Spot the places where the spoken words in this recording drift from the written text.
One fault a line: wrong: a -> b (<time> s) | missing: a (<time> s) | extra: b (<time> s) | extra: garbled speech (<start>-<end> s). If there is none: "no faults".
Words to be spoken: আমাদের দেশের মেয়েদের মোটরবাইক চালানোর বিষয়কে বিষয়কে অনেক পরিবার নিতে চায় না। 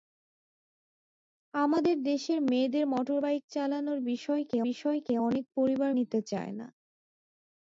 no faults